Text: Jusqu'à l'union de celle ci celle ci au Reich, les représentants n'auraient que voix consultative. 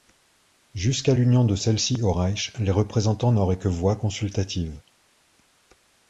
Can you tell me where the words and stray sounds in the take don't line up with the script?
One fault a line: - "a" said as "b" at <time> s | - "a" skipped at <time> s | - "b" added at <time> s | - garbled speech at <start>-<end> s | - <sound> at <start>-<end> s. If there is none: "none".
- "celle ci" skipped at 2.0 s